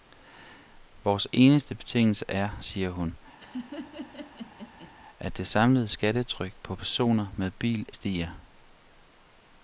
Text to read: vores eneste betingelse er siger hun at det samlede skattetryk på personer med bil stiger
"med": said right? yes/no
yes